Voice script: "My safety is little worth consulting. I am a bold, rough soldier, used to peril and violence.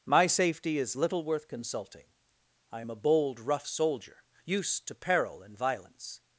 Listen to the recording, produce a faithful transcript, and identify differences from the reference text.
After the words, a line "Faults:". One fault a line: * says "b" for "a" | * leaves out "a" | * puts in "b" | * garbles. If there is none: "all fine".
"My safety is little worth consulting. I am a bold, rough soldier, used to peril and violence.
Faults:
all fine